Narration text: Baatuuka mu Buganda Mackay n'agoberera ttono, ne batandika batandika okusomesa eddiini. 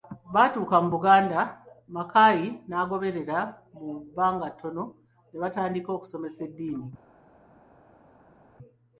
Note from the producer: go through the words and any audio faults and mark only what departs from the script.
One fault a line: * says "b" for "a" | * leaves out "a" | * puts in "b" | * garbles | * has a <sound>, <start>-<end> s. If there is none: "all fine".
* puts in "mu bbanga"
* leaves out "batandika"